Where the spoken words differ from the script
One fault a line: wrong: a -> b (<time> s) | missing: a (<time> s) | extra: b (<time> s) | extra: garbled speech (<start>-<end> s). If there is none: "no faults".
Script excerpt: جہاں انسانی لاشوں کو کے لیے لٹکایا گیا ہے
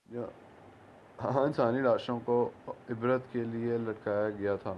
extra: عبرت (2.7 s)
wrong: ہے -> تھا (4.5 s)